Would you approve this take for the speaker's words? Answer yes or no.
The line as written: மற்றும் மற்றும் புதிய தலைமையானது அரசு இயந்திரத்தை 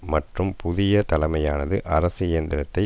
no